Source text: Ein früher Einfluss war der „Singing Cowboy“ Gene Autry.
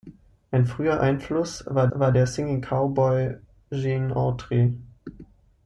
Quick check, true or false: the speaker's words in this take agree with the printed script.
false